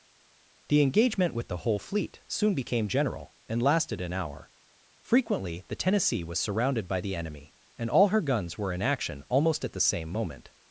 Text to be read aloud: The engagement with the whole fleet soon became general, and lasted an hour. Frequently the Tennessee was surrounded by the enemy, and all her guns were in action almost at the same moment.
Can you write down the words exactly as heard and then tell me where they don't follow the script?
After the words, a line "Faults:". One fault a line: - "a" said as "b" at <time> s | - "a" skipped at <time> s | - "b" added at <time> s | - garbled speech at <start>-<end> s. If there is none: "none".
The engagement with the whole fleet soon became general, and lasted an hour. Frequently the Tennessee was surrounded by the enemy, and all her guns were in action almost at the same moment.
Faults:
none